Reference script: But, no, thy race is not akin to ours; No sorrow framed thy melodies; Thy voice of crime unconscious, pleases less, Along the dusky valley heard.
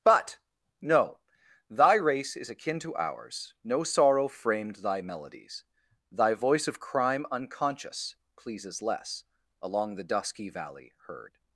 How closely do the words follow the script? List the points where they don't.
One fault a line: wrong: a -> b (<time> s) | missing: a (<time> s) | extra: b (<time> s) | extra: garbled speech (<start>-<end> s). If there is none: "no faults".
missing: not (2.5 s)